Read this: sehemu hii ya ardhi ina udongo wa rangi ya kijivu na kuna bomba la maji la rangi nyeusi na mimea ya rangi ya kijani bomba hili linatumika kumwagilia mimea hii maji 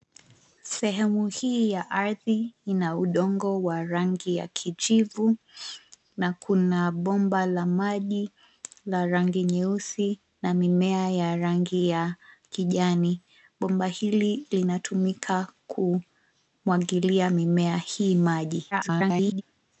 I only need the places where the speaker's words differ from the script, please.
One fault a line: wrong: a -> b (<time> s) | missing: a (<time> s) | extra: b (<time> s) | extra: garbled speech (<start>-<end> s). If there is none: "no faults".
extra: garbled speech (18.7-19.4 s)